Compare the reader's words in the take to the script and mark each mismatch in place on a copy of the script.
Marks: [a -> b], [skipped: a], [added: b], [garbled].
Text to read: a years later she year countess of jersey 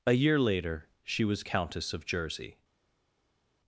a [years -> year] later she [year -> was] countess of jersey